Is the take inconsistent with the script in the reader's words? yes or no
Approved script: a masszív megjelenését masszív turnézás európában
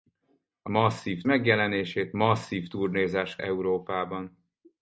no